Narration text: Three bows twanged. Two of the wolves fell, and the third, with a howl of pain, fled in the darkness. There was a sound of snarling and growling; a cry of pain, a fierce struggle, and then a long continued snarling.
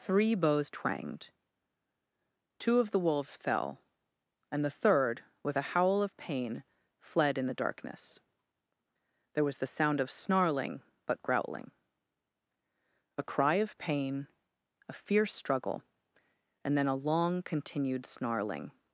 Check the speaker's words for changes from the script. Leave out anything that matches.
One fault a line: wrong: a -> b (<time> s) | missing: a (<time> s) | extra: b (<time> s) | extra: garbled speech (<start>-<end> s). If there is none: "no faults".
wrong: a -> the (9.6 s)
wrong: and -> but (11.1 s)